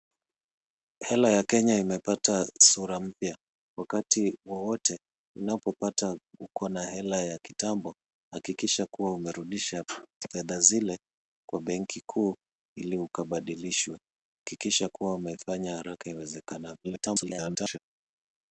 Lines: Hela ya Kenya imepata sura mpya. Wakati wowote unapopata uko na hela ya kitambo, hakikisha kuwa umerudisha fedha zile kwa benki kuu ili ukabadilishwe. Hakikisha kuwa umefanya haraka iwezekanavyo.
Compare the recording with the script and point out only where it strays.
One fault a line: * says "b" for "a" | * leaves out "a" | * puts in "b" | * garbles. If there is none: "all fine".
* garbles